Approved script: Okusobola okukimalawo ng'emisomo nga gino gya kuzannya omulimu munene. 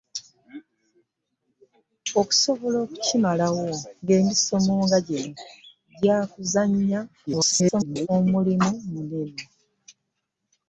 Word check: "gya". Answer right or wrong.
right